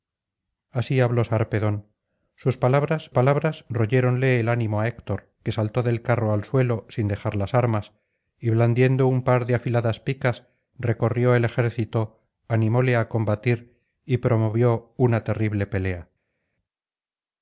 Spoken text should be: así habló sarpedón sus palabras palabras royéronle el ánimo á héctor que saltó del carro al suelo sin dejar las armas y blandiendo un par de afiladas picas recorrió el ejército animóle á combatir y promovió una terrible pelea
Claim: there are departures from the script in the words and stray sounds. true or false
false